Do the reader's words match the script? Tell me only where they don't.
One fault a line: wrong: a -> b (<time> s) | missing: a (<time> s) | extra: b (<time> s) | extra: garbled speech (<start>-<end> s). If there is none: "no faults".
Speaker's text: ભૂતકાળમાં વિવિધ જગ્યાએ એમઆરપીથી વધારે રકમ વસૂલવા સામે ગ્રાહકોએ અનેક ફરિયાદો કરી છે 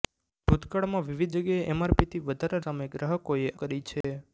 missing: રકમ વસૂલવા (2.6 s)
missing: અનેક ફરિયાદો (3.5 s)